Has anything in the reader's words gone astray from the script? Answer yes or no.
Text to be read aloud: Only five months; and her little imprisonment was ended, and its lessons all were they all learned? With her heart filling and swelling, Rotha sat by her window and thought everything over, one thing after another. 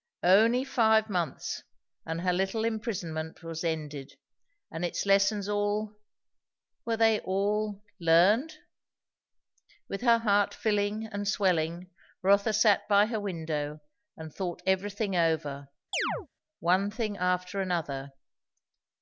no